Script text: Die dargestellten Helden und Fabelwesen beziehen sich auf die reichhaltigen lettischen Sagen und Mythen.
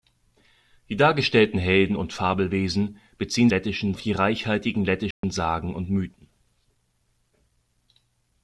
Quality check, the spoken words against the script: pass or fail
fail